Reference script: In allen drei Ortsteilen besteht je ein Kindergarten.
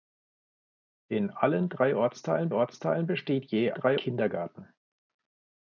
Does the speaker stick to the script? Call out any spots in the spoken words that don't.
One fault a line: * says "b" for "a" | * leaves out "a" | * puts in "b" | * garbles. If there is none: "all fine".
* puts in "Ortsteilen"
* says "drei" for "ein"